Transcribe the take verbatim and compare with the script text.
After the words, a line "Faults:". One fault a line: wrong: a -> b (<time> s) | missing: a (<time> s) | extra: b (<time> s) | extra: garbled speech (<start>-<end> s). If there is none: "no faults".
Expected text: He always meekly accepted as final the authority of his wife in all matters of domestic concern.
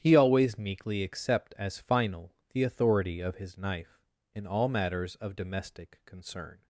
He always meekly accept as final the authority of his knife in all matters of domestic concern.
Faults:
wrong: accepted -> accept (1.0 s)
wrong: wife -> knife (3.6 s)